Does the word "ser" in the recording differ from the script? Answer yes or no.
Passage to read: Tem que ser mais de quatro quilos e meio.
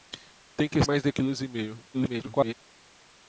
yes